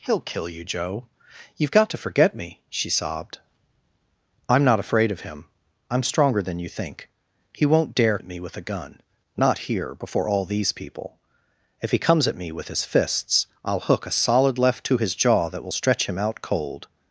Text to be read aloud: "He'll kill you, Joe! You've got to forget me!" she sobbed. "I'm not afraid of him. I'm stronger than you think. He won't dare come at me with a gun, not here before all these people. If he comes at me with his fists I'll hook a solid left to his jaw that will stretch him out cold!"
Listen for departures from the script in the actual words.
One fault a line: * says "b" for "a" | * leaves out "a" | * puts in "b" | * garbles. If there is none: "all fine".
* leaves out "come"